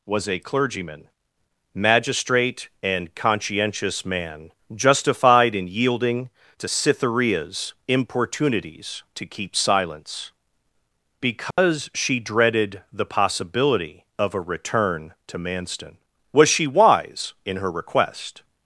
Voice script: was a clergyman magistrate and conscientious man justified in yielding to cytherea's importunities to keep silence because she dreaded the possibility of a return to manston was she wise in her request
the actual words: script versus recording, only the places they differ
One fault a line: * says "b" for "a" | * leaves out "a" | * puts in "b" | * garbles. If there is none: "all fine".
all fine